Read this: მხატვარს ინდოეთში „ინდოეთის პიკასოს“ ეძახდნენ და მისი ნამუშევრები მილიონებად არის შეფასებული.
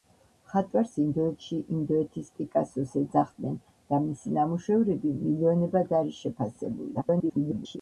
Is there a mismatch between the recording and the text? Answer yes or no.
yes